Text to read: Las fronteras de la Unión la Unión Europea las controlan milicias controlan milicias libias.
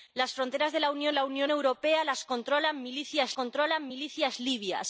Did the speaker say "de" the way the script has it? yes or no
yes